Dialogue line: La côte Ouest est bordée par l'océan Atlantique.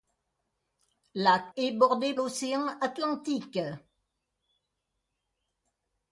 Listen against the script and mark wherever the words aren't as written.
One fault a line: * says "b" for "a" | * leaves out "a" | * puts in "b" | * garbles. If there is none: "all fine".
* leaves out "côte Ouest"
* leaves out "par"